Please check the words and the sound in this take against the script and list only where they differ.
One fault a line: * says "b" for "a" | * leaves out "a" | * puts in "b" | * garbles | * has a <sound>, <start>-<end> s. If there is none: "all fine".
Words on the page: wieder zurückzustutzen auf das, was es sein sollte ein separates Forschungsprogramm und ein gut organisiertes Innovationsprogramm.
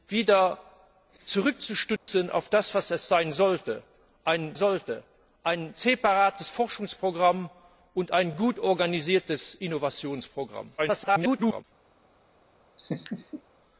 * has a dropout, 2.0-2.1 s
* puts in "sollte ein"
* garbles
* has a laugh, 12.8-13.4 s